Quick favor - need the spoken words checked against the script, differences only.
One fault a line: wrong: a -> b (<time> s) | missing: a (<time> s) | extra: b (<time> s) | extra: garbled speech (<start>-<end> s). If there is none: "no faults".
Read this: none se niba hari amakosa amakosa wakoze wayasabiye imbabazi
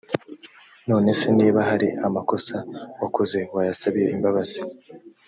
missing: amakosa (2.5 s)